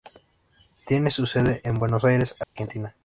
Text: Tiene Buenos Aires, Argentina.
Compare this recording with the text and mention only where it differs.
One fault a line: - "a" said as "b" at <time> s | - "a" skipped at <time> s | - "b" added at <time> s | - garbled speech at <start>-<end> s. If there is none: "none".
- "su sede en" added at 1.1 s